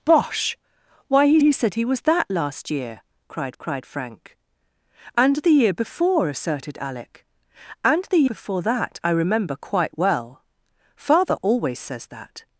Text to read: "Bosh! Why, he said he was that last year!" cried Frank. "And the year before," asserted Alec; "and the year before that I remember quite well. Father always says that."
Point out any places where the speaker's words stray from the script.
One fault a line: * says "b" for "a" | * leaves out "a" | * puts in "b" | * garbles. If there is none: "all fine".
* puts in "he"
* puts in "cried"
* leaves out "year"